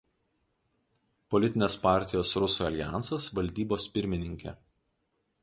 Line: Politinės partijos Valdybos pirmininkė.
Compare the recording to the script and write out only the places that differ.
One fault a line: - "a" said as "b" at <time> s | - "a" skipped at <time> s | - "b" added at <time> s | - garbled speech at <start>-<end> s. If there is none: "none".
- "Rusų aljansas" added at 2.4 s